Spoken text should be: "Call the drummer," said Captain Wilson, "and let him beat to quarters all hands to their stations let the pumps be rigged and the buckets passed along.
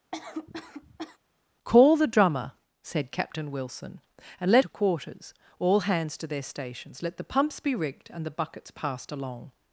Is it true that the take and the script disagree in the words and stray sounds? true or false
true